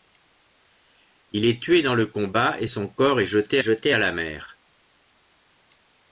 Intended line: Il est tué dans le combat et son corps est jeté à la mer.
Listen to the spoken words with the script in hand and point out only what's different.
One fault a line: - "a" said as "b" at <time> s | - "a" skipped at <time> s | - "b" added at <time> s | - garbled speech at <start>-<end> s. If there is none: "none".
- "jeté" added at 3.6 s